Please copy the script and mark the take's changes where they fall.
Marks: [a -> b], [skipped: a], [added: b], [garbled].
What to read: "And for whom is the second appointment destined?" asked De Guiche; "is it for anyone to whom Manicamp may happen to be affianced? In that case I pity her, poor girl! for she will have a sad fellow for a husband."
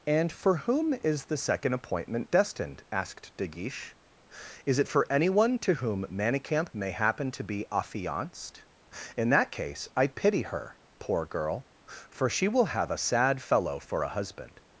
"And for whom is the second appointment destined?" asked De Guiche; "is it for anyone to whom Manicamp may happen to be affianced? In that case I pity her, poor girl! for she will have a sad fellow for a husband."